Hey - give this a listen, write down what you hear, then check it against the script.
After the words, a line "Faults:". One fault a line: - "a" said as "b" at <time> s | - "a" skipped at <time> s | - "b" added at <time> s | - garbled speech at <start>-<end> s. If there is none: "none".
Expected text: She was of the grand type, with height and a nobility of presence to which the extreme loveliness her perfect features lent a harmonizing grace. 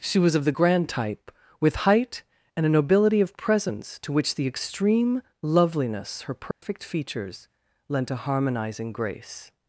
She was of the grand type, with height and a nobility of presence to which the extreme loveliness her perfect features lent a harmonizing grace.
Faults:
none